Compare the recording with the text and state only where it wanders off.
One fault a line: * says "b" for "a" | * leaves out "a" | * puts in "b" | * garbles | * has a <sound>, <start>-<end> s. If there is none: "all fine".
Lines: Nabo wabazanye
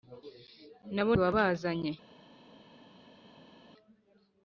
all fine